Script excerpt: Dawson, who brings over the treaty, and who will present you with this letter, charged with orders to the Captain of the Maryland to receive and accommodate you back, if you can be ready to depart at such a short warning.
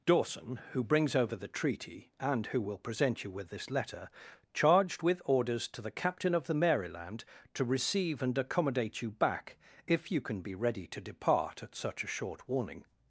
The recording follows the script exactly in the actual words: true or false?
true